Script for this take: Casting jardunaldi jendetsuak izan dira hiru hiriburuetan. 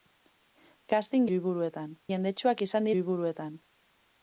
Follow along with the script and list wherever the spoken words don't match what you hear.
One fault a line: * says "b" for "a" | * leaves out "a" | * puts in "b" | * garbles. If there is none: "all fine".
* says "hiriburuetan" for "jardunaldi"
* leaves out "dira hiru"